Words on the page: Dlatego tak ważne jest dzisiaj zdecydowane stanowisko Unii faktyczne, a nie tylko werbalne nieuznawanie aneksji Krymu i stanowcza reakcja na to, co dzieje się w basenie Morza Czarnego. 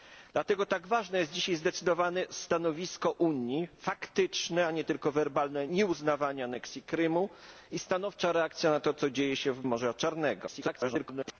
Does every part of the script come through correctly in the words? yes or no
no